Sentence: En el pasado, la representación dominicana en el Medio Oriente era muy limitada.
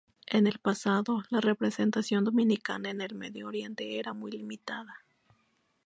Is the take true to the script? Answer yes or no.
yes